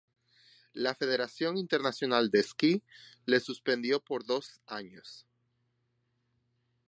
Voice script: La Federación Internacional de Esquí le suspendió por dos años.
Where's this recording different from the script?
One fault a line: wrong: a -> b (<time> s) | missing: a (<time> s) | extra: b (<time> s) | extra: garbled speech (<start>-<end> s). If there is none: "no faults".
no faults